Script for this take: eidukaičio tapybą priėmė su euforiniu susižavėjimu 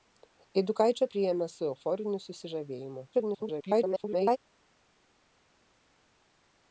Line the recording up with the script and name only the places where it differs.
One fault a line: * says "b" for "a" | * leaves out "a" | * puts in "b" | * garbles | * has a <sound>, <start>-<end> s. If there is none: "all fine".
* leaves out "tapybą"
* garbles